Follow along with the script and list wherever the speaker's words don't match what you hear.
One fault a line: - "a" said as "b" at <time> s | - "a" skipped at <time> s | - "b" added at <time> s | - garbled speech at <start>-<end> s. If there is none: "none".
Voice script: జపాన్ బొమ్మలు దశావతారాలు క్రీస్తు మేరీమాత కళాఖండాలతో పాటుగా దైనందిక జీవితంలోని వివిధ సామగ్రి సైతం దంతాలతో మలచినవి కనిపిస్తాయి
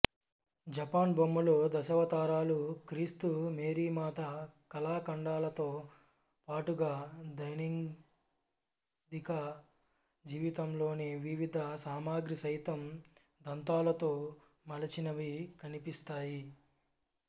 none